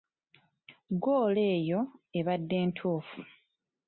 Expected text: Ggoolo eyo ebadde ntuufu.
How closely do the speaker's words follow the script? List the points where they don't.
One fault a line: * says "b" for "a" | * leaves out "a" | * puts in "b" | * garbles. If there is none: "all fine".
all fine